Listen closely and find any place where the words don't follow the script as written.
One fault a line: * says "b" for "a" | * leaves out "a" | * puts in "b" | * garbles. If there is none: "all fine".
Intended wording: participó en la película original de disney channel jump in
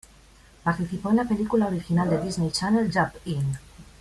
all fine